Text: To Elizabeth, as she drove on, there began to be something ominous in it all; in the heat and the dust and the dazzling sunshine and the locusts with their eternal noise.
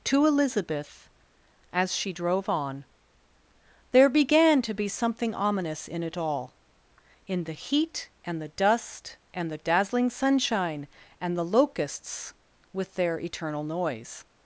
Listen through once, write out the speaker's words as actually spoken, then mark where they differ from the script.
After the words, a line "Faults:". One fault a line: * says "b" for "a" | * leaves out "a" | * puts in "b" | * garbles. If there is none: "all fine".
To Elizabeth, as she drove on, there began to be something ominous in it all; in the heat and the dust and the dazzling sunshine and the locusts with their eternal noise.
Faults:
all fine